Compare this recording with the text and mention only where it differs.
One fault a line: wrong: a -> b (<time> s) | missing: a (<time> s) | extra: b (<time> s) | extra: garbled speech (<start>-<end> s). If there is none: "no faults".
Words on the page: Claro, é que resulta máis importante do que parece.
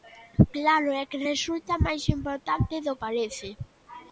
missing: que (2.9 s)